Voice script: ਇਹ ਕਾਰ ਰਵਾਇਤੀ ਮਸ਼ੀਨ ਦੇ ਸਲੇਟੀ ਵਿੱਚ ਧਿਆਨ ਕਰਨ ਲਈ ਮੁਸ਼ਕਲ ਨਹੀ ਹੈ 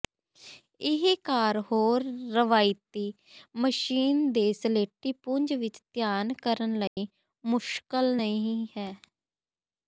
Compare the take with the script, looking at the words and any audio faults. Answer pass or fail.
fail